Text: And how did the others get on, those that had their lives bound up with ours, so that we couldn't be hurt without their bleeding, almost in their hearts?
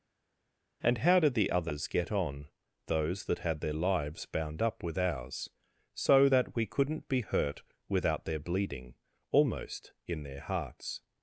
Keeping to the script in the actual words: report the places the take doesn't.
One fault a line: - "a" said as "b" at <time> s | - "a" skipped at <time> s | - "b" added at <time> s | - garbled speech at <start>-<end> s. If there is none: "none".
none